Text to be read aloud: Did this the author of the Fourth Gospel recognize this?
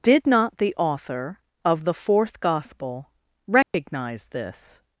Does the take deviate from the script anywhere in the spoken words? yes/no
yes